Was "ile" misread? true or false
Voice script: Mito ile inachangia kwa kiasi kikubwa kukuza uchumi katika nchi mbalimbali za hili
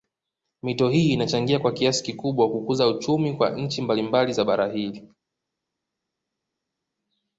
true